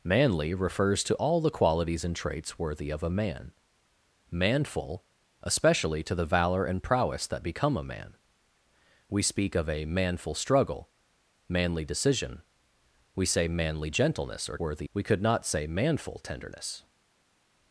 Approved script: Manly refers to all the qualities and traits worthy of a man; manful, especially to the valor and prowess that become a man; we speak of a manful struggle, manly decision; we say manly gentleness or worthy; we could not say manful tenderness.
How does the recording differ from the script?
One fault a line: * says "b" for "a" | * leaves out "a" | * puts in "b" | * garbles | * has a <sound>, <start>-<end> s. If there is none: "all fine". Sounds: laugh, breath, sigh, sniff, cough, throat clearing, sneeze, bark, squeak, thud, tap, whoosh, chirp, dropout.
all fine